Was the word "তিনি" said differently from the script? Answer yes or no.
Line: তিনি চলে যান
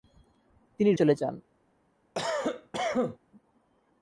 no